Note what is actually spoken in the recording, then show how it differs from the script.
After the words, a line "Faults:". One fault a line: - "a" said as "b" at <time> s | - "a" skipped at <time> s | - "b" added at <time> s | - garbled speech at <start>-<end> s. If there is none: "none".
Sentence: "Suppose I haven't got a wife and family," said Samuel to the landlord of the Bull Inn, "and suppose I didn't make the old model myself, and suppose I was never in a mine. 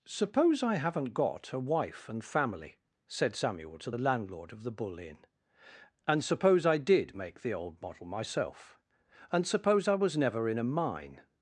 "Suppose I haven't got a wife and family," said Samuel to the landlord of the Bull Inn, "and suppose I did make the old model myself, and suppose I was never in a mine.
Faults:
- "didn't" said as "did" at 6.8 s